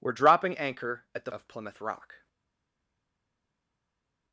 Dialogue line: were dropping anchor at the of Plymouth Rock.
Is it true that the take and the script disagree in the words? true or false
false